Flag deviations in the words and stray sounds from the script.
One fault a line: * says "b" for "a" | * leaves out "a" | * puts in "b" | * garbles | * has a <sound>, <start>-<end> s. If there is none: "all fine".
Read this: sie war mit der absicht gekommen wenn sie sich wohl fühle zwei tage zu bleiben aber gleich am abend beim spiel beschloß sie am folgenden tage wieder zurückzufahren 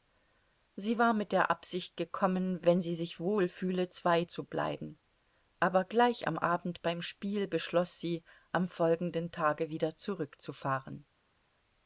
* leaves out "tage"